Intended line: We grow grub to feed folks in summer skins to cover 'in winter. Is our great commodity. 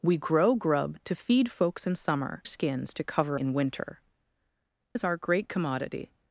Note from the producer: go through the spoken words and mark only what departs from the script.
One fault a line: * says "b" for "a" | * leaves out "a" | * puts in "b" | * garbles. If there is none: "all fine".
all fine